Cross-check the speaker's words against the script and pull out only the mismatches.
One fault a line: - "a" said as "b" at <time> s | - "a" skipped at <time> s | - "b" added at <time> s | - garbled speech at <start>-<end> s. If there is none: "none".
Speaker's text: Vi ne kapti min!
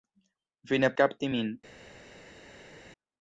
none